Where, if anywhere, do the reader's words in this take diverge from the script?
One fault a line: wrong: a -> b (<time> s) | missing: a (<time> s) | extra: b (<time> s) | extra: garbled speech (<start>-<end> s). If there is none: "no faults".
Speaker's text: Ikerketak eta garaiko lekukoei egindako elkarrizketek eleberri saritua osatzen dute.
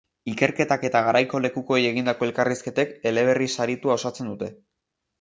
no faults